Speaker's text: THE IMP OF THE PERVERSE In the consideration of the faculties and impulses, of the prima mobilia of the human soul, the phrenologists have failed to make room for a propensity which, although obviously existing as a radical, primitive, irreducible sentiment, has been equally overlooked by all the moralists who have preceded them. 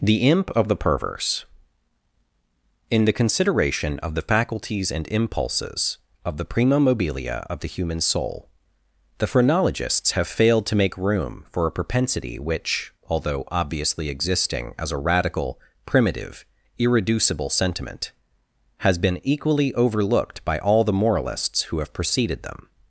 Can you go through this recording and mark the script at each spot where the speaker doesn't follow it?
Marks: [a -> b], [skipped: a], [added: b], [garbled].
THE IMP OF THE PERVERSE In the consideration of the faculties and impulses, of the prima mobilia of the human soul, the phrenologists have failed to make room for a propensity which, although obviously existing as a radical, primitive, irreducible sentiment, has been equally overlooked by all the moralists who have preceded them.